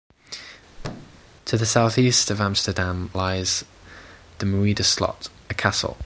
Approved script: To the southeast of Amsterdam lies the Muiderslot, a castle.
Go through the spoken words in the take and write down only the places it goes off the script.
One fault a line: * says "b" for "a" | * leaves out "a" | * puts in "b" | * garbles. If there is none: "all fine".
all fine